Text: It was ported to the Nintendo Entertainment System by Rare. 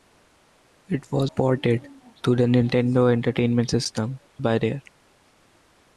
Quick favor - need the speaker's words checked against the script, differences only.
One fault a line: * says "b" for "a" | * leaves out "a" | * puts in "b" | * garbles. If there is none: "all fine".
all fine